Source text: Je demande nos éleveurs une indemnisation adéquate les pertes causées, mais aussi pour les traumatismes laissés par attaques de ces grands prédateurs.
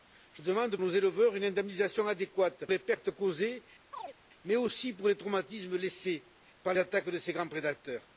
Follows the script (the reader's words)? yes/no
yes